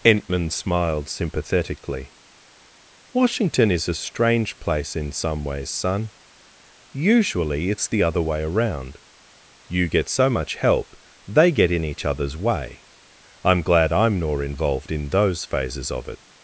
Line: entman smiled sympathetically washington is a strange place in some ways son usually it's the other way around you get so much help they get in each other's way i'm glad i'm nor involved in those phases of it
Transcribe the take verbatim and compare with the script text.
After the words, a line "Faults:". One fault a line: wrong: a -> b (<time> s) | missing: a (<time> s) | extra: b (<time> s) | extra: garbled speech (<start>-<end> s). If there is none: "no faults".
entman smiled sympathetically washington is a strange place in some ways son usually it's the other way around you get so much help they get in each other's way i'm glad i'm nor involved in those phases of it
Faults:
no faults